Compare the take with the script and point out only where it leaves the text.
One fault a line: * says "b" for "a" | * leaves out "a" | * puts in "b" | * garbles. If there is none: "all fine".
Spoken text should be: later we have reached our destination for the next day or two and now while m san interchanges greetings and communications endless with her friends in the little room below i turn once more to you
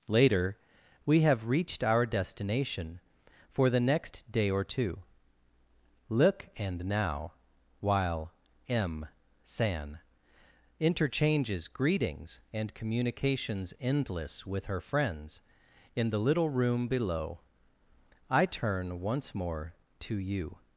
* puts in "look"